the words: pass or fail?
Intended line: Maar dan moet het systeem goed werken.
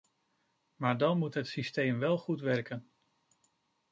fail